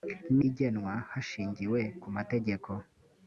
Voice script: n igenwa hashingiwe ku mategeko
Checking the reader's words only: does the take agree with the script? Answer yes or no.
yes